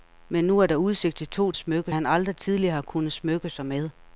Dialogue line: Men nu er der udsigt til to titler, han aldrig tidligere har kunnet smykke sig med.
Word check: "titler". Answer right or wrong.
wrong